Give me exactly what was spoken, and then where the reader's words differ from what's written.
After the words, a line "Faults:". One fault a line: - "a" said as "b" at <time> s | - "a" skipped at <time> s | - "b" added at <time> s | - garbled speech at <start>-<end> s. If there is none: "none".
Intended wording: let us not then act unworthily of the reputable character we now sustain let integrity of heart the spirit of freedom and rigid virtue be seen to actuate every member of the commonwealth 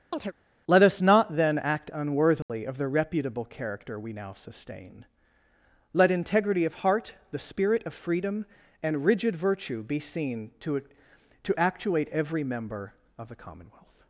let us not then act unworthily of the reputable character we now sustain let integrity of heart the spirit of freedom and rigid virtue be seen to to actuate every member of the commonwealth
Faults:
- "to" added at 11.4 s